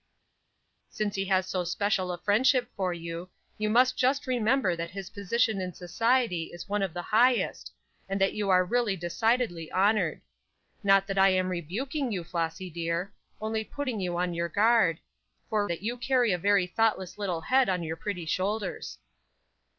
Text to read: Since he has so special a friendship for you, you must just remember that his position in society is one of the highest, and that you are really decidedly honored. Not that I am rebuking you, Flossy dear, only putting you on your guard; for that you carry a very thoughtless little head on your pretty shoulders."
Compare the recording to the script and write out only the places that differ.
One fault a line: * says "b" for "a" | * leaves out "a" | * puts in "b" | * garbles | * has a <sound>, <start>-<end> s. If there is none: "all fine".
all fine